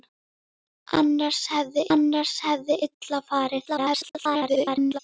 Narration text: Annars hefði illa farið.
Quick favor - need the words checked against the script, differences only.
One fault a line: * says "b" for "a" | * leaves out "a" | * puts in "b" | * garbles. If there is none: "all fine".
* puts in "annars hefði"
* garbles